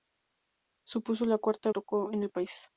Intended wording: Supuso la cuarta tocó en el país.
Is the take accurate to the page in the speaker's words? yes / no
yes